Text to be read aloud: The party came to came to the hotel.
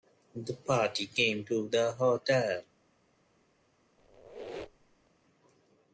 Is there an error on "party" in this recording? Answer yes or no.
no